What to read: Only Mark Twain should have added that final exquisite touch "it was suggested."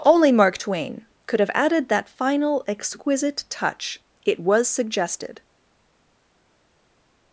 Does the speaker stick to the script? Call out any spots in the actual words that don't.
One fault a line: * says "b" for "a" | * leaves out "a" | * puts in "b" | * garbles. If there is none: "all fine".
* says "could" for "should"